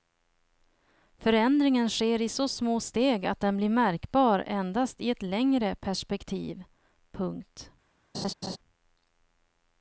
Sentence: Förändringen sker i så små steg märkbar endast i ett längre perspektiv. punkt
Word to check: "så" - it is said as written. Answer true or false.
true